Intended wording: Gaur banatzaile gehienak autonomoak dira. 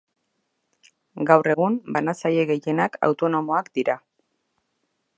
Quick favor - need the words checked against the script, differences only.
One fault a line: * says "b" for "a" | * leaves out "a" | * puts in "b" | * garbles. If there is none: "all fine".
* puts in "egun"